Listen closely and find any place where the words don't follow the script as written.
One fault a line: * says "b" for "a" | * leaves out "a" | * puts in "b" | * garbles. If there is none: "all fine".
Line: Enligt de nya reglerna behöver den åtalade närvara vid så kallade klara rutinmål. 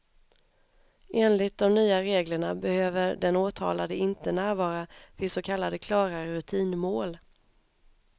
* puts in "inte"